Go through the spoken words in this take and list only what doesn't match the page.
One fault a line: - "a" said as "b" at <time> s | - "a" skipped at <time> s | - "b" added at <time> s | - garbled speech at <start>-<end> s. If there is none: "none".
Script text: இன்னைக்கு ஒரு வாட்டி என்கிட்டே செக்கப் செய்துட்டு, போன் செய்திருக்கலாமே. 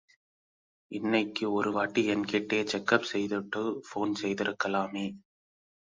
none